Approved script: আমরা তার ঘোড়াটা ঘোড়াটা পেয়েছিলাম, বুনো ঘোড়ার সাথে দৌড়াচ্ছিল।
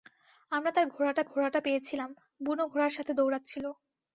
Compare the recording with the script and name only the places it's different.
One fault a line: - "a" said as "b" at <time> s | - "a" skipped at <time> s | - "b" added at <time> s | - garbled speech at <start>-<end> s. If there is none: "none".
none